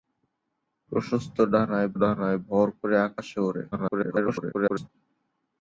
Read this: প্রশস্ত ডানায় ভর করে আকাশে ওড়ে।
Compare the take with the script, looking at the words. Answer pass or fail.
fail